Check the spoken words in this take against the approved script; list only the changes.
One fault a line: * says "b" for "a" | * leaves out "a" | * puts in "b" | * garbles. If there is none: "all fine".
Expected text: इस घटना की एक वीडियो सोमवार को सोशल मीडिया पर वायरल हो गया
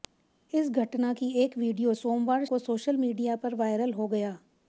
all fine